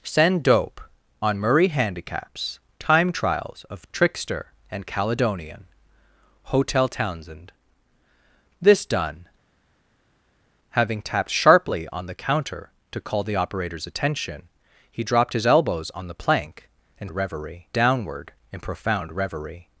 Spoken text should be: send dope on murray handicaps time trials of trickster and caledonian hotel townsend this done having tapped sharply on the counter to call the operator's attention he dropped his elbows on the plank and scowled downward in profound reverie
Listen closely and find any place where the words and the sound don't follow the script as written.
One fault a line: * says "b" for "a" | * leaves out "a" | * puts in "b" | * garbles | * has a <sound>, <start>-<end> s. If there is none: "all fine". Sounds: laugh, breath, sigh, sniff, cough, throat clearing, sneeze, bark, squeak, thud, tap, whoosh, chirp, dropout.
* says "reverie" for "scowled"